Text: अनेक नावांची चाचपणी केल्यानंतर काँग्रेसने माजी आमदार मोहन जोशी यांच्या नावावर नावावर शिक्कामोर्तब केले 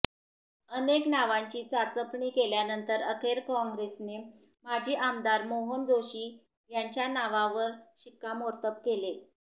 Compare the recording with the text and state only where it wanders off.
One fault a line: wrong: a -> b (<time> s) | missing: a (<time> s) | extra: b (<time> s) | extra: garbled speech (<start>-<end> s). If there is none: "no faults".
extra: अखेर (3.0 s)
missing: नावावर (7.7 s)